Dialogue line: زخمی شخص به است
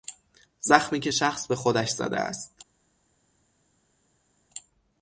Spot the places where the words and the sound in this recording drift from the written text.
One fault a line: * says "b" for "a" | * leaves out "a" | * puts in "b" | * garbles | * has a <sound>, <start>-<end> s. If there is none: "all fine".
* puts in "که"
* puts in "خودش زده"